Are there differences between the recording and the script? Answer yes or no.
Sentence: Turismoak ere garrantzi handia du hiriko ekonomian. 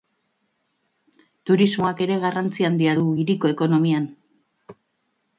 no